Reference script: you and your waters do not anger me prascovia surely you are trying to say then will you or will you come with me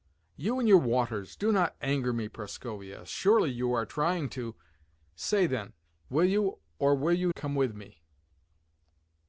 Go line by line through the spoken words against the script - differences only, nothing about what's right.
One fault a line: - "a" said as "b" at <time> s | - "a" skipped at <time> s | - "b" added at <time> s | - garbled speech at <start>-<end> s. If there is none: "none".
none